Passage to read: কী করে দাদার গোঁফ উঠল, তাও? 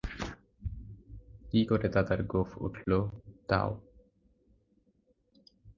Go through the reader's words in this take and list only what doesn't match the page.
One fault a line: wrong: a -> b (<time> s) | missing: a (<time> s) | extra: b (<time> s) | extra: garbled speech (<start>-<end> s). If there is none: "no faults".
no faults